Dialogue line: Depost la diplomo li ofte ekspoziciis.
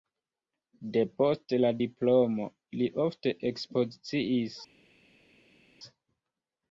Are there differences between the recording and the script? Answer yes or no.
no